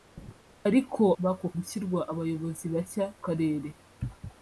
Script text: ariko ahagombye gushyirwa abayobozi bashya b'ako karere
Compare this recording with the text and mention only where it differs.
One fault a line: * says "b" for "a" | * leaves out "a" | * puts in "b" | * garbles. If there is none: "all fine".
* says "b'ako" for "ahagombye"
* leaves out "b'ako"